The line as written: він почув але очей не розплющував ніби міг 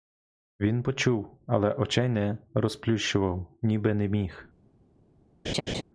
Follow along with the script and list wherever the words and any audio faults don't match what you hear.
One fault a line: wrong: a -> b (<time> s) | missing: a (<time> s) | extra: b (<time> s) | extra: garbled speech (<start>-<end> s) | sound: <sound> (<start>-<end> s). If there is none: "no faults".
extra: не (3.9 s)
sound: laugh (5.4-5.8 s)